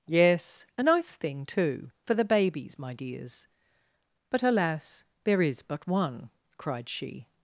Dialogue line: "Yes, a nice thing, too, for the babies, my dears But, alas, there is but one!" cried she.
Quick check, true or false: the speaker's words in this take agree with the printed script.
true